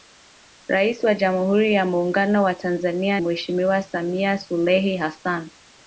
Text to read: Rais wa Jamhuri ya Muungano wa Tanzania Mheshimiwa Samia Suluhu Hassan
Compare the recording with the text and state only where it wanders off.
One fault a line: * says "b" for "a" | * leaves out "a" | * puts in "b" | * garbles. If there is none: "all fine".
all fine